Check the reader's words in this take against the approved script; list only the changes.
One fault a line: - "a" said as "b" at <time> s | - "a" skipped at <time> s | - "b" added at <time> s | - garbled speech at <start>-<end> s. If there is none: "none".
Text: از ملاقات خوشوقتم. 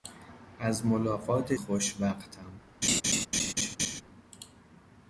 none